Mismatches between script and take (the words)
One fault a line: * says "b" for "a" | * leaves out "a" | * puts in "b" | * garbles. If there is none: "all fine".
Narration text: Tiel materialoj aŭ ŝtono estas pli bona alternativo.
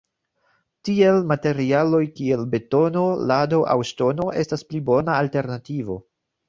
* puts in "kiel betono lado"